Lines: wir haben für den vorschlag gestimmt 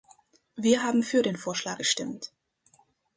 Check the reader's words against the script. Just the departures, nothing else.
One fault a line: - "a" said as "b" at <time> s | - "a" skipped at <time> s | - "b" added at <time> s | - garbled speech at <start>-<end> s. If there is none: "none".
none